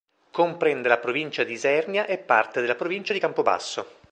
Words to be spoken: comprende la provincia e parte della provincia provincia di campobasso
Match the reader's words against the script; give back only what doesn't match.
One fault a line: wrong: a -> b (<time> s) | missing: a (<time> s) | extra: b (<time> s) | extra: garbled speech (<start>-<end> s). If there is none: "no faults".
extra: di isernia (1.4 s)
missing: provincia (3.1 s)